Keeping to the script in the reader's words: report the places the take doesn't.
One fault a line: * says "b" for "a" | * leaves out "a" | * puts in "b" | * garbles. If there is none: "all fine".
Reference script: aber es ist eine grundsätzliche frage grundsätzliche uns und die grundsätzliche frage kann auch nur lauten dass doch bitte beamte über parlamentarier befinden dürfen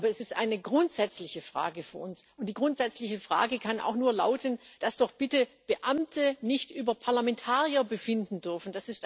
* says "für" for "grundsätzliche"
* puts in "nicht"